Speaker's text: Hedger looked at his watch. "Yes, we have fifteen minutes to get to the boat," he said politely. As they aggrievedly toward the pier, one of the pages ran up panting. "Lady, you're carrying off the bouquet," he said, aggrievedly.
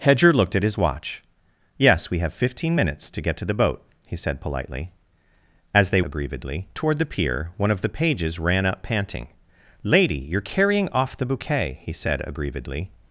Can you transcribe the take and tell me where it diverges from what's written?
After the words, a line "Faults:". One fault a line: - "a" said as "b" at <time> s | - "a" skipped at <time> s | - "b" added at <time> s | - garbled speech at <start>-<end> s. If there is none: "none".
Hedger looked at his watch. "Yes, we have fifteen minutes to get to the boat," he said politely. As they aggrievedly toward the pier, one of the pages ran up panting. "Lady, you're carrying off the bouquet," he said, aggrievedly.
Faults:
none